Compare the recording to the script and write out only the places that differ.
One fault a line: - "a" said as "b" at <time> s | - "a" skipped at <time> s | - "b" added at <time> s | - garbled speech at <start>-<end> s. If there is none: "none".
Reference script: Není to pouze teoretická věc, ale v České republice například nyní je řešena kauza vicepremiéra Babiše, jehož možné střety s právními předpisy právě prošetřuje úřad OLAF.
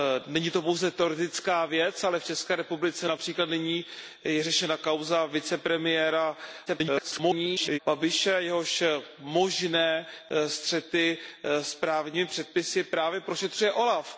- garbled speech at 6.7-7.8 s